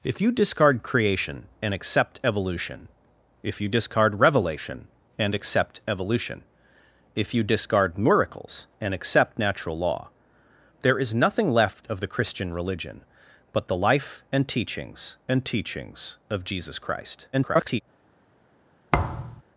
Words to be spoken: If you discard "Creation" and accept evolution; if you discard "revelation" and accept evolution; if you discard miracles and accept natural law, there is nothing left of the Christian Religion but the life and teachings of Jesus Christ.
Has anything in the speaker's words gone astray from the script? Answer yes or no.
yes